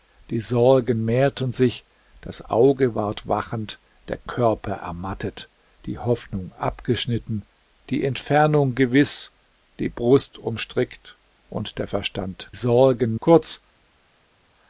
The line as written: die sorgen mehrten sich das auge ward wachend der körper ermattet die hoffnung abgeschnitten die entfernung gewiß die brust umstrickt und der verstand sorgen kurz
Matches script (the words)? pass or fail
pass